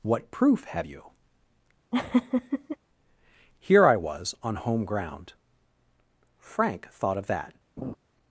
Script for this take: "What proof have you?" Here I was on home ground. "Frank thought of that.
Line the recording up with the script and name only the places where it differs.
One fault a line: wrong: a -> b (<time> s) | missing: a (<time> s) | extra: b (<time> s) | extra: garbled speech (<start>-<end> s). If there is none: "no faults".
no faults